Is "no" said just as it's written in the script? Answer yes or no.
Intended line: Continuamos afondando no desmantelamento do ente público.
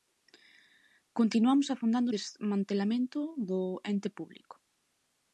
no